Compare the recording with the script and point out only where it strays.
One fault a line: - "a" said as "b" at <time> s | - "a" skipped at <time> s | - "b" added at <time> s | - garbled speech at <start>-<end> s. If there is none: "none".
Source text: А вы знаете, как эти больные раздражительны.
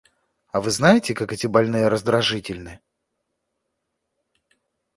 none